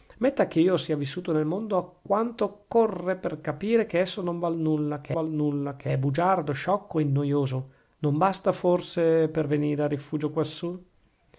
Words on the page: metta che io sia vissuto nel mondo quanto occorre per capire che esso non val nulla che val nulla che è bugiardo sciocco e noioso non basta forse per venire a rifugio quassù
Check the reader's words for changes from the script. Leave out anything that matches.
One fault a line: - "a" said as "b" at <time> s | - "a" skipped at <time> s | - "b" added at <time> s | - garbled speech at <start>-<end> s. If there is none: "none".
none